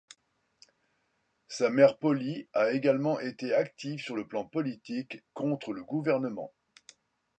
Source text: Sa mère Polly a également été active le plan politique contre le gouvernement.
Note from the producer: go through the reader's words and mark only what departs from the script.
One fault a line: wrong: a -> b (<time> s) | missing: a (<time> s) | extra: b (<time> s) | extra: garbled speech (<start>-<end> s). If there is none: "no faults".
extra: sur (4.0 s)